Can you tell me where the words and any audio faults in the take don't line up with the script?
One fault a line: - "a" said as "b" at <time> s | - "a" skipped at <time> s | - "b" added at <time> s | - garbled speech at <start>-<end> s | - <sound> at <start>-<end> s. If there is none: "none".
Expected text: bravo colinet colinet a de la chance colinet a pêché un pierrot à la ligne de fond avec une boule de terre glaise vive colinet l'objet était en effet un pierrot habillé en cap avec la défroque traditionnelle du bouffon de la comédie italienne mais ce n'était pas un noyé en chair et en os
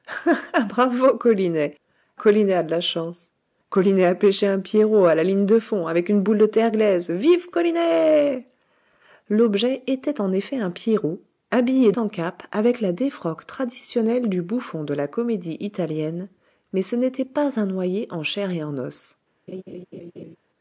- laugh at 19.5-20.4 s